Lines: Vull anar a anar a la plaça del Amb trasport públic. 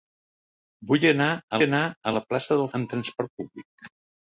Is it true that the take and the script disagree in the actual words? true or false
false